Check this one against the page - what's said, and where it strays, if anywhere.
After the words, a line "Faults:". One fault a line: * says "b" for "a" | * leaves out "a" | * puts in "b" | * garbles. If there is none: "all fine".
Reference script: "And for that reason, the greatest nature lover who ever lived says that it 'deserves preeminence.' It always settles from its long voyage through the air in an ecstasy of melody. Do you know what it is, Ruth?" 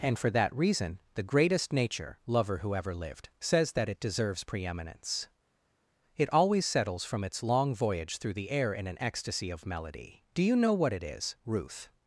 "And for that reason, the greatest nature lover who ever lived says that it 'deserves preeminence.' It always settles from its long voyage through the air in an ecstasy of melody. Do you know what it is, Ruth?"
Faults:
all fine